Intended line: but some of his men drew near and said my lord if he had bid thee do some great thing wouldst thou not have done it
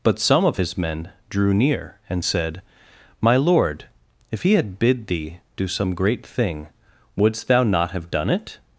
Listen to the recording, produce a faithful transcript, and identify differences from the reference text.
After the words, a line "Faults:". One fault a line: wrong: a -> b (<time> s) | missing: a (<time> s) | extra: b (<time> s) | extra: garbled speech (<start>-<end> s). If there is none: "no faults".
but some of his men drew near and said my lord if he had bid thee do some great thing wouldst thou not have done it
Faults:
no faults